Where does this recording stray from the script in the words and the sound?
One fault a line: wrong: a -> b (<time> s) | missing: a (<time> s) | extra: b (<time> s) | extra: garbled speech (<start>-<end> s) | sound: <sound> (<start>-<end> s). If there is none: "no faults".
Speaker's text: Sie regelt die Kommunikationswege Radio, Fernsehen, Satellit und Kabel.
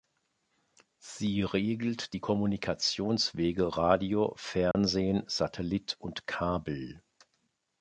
sound: dropout (4.7-4.7 s)